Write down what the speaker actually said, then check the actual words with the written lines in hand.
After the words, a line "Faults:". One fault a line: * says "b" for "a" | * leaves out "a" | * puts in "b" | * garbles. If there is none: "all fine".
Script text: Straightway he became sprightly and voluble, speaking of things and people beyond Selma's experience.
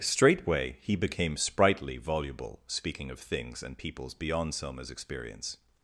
Straightway he became sprightly voluble, speaking of things and peoples beyond Selma's experience.
Faults:
* leaves out "and"
* says "peoples" for "people"